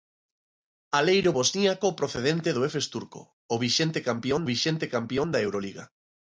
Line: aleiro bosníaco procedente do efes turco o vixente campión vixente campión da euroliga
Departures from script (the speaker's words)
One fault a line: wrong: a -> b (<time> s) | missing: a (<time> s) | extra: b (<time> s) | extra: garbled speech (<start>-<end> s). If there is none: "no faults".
no faults